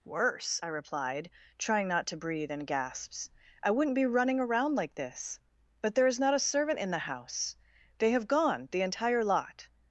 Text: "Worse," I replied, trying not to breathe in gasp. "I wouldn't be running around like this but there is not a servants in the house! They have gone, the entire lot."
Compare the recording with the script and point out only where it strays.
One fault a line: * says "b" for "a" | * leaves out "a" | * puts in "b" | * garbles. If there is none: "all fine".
* says "gasps" for "gasp"
* says "servant" for "servants"